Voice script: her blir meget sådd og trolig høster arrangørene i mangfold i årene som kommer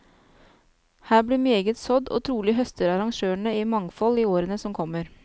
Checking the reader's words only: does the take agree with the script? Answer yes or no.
yes